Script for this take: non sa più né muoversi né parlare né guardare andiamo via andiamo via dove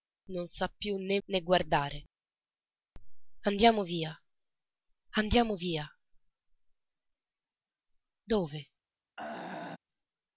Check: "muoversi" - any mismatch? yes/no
yes